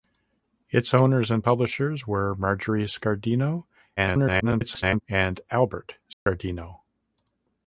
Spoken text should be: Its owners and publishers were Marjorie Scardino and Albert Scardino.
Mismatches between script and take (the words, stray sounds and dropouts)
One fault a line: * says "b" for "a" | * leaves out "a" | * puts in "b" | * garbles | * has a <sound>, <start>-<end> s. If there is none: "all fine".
* garbles
* has a dropout, 6.1-6.3 s